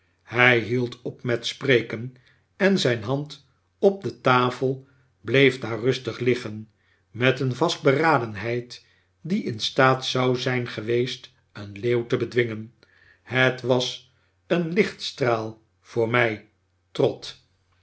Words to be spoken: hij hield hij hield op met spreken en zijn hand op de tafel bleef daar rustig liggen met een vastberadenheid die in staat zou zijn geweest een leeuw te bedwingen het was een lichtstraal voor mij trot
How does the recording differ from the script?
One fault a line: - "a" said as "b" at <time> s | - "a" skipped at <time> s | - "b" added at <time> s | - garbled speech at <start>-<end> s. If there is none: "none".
- "hij hield" skipped at 1.0 s